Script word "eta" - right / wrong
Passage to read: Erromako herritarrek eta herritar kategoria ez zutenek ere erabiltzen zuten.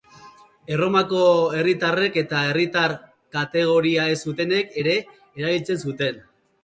right